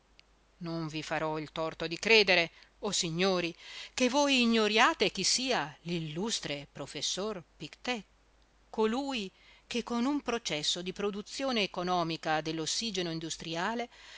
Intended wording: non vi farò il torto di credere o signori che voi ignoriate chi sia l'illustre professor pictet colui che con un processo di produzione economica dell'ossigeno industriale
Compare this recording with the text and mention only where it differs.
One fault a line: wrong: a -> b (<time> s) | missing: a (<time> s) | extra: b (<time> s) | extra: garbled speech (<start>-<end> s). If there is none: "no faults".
no faults